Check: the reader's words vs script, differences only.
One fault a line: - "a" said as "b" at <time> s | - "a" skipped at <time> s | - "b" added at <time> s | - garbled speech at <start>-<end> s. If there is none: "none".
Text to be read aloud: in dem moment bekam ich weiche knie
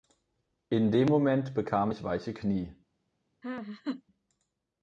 none